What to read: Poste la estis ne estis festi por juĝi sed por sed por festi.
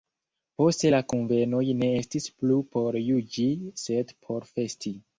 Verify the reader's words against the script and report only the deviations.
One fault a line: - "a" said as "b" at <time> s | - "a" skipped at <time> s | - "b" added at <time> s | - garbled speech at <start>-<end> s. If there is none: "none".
- "estis" said as "kunvenoj" at 1.1 s
- "festi" said as "plu" at 2.4 s
- "sed por" skipped at 4.5 s